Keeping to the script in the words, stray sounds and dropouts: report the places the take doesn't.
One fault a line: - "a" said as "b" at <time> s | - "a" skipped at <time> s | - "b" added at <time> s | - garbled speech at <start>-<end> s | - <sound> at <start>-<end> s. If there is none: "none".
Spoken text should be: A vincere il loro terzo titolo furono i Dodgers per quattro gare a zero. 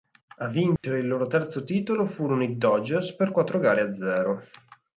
- dropout at 0.8-0.8 s